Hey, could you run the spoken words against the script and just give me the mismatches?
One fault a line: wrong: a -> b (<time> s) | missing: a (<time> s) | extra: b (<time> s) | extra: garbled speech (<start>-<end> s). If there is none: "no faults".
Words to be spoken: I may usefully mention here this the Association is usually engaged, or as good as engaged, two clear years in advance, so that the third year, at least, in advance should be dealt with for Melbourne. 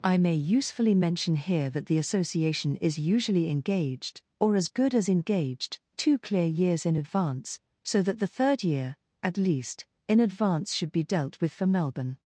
wrong: this -> that (1.7 s)